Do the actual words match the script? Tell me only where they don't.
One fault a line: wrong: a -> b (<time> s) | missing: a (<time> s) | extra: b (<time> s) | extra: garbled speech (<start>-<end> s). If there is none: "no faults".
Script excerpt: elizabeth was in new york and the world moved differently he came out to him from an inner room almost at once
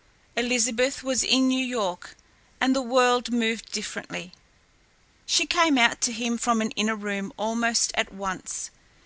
wrong: he -> she (5.3 s)